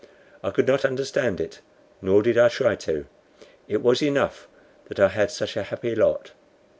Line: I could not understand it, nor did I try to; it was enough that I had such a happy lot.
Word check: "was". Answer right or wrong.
right